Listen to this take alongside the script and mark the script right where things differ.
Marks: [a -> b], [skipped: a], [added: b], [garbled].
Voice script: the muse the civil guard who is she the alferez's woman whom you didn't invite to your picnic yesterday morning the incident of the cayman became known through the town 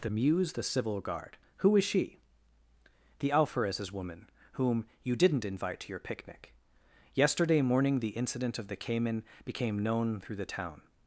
the muse the civil guard who is she the alferez's woman whom you didn't invite to your picnic yesterday morning the incident of the cayman became known through the town